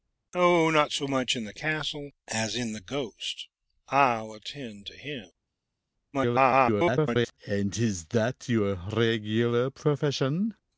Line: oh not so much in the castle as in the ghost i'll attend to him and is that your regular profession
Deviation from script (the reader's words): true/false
true